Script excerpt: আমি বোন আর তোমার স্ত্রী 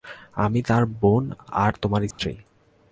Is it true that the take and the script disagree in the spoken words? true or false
true